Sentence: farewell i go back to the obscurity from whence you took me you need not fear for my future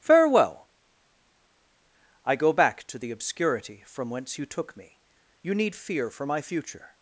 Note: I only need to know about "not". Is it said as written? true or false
false